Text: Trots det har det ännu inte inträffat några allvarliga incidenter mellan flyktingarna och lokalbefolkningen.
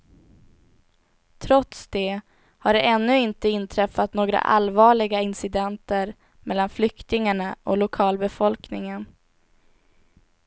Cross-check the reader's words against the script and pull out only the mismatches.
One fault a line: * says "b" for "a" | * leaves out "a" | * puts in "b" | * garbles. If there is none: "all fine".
all fine